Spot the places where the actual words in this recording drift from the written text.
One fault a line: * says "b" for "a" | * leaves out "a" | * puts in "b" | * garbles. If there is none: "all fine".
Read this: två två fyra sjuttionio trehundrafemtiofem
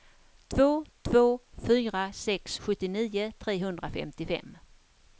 * puts in "sex"